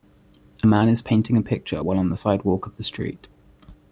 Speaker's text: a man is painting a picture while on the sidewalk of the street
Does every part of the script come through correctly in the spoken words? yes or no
yes